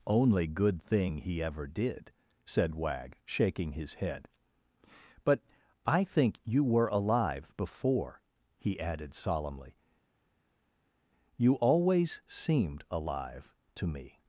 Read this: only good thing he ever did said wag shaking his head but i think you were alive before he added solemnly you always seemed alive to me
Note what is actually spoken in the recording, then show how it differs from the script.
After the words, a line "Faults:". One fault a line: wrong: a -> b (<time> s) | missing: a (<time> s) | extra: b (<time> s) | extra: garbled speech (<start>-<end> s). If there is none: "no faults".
only good thing he ever did said wag shaking his head but i think you were alive before he added solemnly you always seemed alive to me
Faults:
no faults